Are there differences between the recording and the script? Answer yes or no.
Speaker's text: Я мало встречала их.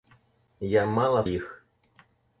yes